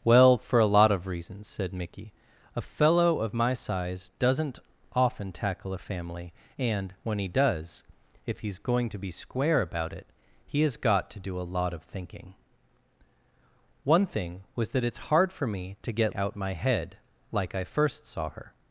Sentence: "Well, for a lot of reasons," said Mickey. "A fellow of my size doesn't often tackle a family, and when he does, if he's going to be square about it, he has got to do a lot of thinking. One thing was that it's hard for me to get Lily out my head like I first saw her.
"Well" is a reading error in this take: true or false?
false